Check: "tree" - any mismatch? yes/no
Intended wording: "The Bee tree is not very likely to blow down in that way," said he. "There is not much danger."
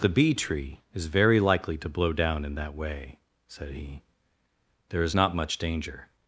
no